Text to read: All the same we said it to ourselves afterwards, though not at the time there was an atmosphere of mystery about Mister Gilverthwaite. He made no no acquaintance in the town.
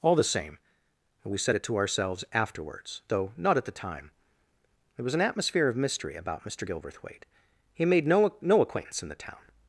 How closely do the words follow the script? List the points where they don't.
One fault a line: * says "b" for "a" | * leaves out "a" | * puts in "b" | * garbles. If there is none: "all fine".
all fine